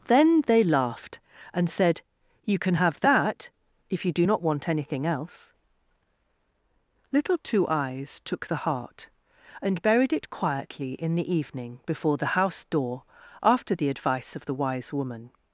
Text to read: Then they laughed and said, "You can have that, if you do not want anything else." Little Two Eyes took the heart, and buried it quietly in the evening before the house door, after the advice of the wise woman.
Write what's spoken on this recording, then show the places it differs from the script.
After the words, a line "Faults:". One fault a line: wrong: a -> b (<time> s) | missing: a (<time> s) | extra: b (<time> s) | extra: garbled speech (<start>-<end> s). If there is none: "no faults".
Then they laughed and said, "You can have that, if you do not want anything else." Little Two Eyes took the heart, and buried it quietly in the evening before the house door, after the advice of the wise woman.
Faults:
no faults